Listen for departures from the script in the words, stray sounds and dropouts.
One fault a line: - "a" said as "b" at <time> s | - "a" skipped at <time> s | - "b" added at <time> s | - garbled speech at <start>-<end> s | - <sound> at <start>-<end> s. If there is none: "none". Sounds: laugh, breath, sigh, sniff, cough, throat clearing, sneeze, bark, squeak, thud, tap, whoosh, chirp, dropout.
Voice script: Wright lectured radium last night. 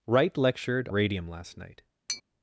- tap at 2.1-2.2 s